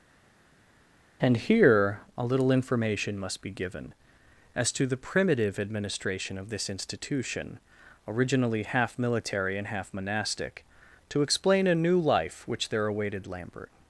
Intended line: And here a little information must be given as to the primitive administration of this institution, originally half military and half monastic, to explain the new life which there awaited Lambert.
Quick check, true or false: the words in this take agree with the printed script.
false